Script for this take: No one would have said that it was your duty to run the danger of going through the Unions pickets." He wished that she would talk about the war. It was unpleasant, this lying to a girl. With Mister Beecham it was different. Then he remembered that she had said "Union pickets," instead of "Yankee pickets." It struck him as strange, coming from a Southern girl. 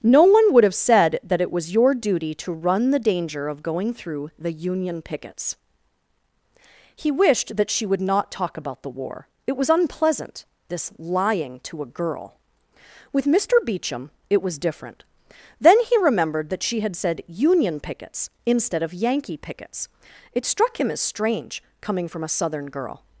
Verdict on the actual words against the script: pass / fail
fail